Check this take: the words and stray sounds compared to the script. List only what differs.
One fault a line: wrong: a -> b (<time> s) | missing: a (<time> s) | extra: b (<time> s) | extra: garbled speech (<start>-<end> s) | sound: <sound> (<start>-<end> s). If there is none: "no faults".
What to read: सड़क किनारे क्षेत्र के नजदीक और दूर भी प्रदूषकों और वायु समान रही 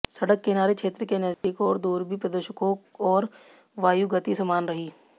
sound: dropout (1.3-1.4 s)
extra: गति (4.1 s)